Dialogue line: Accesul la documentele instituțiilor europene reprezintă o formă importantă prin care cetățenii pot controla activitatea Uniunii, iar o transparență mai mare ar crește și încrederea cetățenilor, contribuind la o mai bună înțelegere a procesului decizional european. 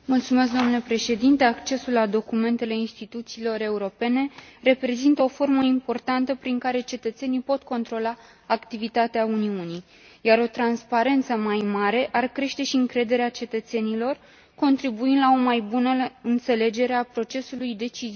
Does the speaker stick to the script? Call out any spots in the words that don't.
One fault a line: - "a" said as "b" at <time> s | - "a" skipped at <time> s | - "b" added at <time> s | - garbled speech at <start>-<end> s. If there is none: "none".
none